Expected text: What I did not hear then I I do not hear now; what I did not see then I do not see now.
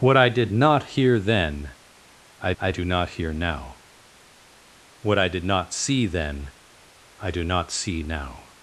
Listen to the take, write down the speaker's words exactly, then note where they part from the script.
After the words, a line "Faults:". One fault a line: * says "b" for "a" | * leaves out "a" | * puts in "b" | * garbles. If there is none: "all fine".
What I did not hear then I I do not hear now; what I did not see then I do not see now.
Faults:
all fine